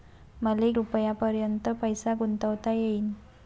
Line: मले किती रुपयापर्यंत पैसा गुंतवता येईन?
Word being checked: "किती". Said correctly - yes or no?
no